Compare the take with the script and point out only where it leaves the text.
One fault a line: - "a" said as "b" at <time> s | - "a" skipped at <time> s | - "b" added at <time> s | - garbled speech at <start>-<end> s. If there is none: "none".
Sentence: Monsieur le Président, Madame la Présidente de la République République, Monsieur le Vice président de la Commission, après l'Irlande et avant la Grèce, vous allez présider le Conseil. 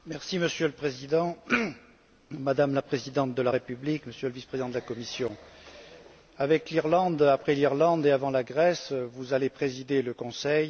- "République" skipped at 4.1 s
- "avec l'Irlande" added at 6.4 s